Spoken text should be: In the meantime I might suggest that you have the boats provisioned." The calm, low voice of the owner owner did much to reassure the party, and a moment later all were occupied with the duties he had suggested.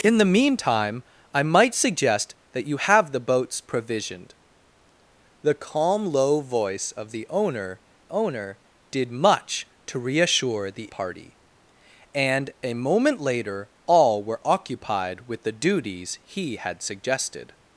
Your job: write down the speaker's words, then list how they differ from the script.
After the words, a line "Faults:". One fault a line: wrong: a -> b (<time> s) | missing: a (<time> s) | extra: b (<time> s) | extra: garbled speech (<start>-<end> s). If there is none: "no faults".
In the meantime I might suggest that you have the boats provisioned." The calm, low voice of the owner owner did much to reassure the party, and a moment later all were occupied with the duties he had suggested.
Faults:
no faults